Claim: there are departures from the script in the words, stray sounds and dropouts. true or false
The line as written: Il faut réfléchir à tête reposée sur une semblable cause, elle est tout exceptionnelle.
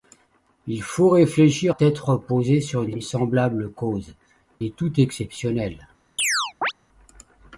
true